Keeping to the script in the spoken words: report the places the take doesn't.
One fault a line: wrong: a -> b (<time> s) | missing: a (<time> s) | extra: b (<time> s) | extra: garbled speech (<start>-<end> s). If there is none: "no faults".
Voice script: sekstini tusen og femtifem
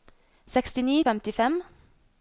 missing: tusen (0.9 s)